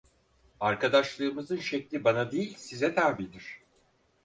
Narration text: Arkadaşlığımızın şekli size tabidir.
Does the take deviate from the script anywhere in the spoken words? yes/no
yes